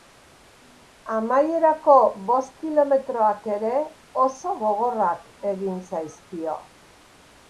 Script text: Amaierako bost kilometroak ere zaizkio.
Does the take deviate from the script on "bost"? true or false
false